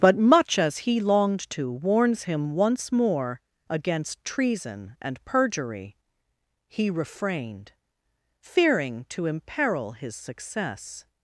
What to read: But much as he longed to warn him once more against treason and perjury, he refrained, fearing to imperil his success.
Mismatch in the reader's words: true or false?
true